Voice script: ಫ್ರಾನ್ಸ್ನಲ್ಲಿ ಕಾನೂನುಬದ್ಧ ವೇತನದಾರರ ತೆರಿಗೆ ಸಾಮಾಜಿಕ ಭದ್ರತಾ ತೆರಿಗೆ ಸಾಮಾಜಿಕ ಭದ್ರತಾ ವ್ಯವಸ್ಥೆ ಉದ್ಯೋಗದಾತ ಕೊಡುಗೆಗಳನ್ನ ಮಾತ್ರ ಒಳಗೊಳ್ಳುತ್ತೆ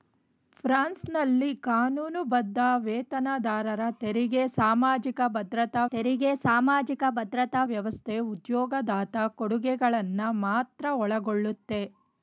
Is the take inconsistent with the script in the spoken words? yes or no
no